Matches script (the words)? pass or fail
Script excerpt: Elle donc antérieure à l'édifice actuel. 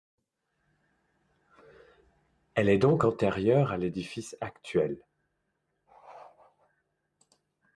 fail